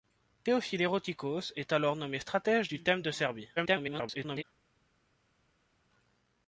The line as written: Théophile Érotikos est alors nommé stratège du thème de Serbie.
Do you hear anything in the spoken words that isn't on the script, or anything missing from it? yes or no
yes